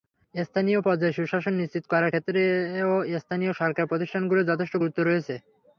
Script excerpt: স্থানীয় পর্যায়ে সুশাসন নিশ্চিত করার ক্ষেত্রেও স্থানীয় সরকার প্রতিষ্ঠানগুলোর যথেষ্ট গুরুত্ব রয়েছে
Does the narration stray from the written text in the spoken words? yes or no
no